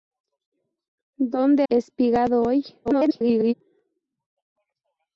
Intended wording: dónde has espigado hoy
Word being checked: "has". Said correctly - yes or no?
no